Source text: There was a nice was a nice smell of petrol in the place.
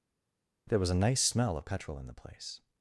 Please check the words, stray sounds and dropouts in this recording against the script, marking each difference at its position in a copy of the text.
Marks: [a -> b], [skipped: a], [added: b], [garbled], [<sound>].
There was a nice [skipped: was a nice] smell of petrol in the place.